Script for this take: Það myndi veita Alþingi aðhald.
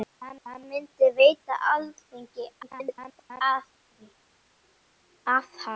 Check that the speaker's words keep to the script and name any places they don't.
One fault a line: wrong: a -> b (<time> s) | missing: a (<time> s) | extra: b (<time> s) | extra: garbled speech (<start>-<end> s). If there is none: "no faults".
extra: það (0.5 s)
extra: garbled speech (2.6-3.4 s)